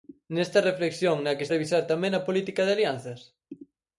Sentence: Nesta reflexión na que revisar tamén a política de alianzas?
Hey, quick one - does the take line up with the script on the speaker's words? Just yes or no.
yes